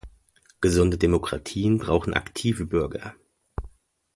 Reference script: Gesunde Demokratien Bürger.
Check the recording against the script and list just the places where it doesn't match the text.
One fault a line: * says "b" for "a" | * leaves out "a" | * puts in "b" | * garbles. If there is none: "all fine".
* puts in "brauchen aktive"